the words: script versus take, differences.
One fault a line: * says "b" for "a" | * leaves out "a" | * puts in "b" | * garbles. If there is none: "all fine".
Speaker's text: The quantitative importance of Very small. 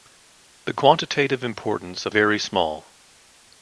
all fine